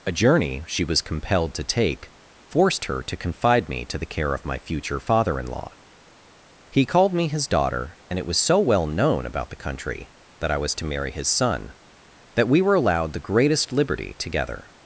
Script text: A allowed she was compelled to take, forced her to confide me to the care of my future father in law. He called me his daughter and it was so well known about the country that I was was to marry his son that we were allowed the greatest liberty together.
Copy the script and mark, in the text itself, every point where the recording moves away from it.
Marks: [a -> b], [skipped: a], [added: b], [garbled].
A [allowed -> journey] she was compelled to take, forced her to confide me to the care of my future father in law. He called me his daughter and it was so well known about the country that I was [skipped: was] to marry his son that we were allowed the greatest liberty together.